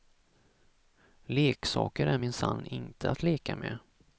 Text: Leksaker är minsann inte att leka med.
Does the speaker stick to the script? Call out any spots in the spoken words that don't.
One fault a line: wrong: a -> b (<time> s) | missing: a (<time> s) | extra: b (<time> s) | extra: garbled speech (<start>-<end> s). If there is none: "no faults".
no faults